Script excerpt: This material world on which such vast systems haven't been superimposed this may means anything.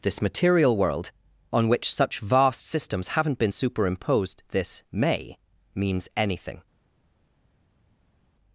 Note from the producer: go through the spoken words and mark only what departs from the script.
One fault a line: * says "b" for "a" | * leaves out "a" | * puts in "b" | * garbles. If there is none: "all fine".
all fine